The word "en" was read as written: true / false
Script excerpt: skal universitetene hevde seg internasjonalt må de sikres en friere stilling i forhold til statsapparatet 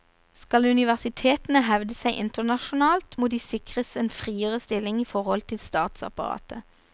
true